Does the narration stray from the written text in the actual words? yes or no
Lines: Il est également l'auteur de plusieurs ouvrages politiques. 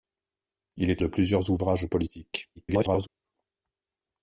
yes